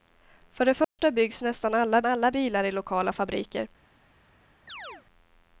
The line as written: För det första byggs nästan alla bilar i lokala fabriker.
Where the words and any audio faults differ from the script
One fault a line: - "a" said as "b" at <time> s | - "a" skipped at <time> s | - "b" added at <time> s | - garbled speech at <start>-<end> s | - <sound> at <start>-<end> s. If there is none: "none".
- dropout at 0.8-1.0 s
- "alla" added at 2.0 s
- chirp at 4.7-5.0 s